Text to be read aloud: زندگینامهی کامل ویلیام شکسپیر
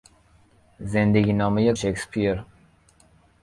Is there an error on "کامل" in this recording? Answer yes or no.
yes